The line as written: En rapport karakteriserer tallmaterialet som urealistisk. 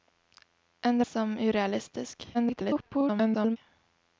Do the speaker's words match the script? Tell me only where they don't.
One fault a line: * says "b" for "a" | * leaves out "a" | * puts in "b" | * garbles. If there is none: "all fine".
* leaves out "rapport karakteriserer tallmaterialet"
* garbles